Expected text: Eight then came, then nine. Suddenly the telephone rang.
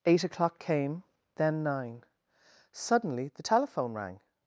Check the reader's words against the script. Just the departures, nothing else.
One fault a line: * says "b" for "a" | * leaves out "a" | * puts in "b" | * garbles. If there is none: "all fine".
* says "o'clock" for "then"